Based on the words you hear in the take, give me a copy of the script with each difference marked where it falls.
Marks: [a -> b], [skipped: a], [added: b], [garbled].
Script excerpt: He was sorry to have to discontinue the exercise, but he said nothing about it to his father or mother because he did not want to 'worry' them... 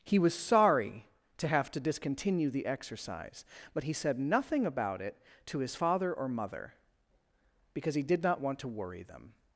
He was sorry to have to discontinue the exercise, but he said nothing about it to his father or mother because he did not want to 'worry' them...